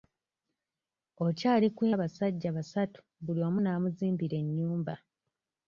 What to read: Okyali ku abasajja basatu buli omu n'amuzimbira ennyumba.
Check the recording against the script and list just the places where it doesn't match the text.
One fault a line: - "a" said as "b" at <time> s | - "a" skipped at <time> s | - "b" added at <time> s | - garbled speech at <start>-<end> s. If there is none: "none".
none